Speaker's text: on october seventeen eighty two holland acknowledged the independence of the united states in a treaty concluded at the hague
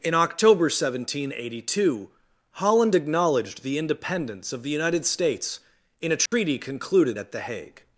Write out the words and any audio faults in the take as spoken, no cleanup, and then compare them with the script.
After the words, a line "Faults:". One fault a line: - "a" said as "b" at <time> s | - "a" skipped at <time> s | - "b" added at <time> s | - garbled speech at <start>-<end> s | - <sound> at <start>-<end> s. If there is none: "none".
in october seventeen eighty two holland acknowledged the independence of the united states in a treaty concluded at the hague
Faults:
- "on" said as "in" at 0.0 s
- dropout at 6.3-6.3 s